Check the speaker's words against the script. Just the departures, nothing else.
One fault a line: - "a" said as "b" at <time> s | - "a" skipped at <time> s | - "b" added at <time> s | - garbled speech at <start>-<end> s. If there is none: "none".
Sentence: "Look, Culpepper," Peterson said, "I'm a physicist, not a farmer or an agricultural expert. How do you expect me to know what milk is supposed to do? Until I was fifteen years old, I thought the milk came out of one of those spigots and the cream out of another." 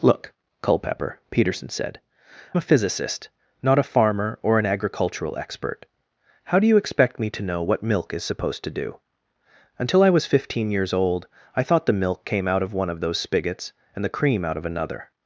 - "I'm" skipped at 2.0 s